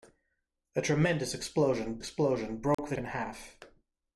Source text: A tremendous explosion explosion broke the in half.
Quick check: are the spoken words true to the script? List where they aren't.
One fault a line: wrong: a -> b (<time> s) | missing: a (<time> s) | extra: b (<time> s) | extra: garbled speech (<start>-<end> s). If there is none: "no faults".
no faults